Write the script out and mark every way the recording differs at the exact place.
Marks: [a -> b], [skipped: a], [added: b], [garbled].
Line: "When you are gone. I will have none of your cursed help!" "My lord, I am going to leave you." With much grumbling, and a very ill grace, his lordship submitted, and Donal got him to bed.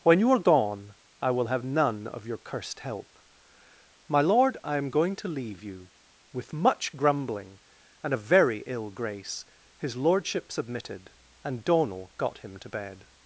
"When you are gone. I will have none of your cursed help!" "My lord, I am going to leave you." With much grumbling, and a very ill grace, his lordship submitted, and Donal got him to bed.